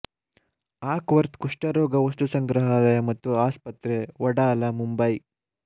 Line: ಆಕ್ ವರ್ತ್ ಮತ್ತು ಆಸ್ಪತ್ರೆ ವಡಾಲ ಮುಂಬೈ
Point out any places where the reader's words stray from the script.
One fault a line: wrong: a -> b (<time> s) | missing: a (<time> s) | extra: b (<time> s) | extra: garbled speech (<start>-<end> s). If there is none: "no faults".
extra: ಕುಷ್ಠರೋಗ ವಸ್ತುಸಂಗ್ರಹಾಲಯ (1.4 s)